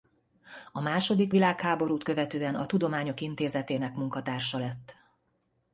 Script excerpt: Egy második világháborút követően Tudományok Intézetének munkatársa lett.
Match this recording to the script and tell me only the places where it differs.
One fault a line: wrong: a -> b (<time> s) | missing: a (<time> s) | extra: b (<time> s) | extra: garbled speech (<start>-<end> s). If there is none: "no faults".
wrong: Egy -> A (0.7 s)
extra: a (2.5 s)